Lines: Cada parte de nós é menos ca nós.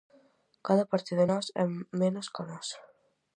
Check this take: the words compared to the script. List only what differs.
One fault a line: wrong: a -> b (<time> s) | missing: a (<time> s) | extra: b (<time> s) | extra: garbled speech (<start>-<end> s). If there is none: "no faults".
no faults